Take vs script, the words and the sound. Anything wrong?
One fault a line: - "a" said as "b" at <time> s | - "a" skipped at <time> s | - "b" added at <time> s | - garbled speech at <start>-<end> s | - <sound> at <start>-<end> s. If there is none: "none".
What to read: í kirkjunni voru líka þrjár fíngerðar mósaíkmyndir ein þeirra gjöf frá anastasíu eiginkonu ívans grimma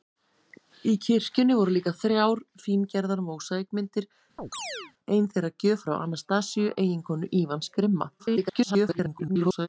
- chirp at 4.4-4.9 s
- garbled speech at 8.2-9.7 s